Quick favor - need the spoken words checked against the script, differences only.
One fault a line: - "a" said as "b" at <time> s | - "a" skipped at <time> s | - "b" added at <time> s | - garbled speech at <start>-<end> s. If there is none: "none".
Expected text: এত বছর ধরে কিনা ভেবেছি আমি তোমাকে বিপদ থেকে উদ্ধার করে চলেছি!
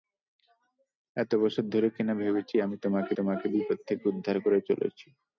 - "তোমাকে" added at 3.2 s